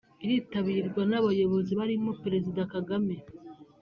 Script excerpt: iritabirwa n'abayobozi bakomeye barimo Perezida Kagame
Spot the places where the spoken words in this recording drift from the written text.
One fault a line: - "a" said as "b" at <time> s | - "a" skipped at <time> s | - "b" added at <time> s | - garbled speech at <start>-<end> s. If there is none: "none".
- "bakomeye" skipped at 1.7 s